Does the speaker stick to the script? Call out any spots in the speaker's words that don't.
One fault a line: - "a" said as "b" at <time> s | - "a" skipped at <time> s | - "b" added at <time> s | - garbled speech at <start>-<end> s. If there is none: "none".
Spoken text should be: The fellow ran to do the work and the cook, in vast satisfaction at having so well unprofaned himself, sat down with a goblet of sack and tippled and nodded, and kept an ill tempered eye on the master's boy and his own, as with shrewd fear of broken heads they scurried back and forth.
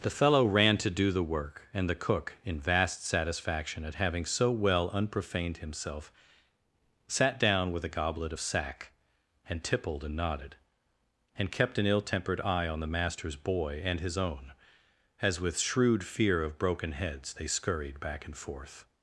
none